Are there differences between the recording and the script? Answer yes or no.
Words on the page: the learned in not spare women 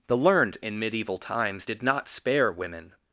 yes